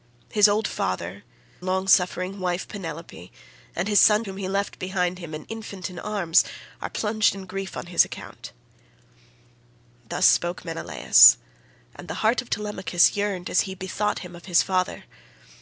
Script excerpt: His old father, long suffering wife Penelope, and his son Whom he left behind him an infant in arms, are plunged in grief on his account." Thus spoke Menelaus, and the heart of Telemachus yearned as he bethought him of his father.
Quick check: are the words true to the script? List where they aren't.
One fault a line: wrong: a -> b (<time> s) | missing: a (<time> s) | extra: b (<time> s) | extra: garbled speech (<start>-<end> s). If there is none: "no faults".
no faults